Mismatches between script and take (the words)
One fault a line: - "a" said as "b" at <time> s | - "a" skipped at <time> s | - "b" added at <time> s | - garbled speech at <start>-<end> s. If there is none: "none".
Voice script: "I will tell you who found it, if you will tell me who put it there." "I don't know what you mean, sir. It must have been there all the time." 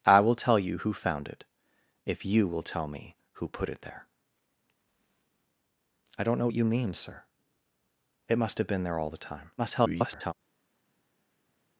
- garbled speech at 9.6-10.3 s